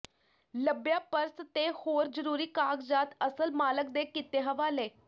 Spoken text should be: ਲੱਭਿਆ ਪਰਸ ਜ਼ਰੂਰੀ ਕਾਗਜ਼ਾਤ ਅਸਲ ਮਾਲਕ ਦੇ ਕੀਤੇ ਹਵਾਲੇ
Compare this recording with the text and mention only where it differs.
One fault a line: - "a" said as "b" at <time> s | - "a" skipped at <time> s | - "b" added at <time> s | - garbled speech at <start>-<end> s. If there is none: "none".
- "ਤੇ ਹੋਰ" added at 1.5 s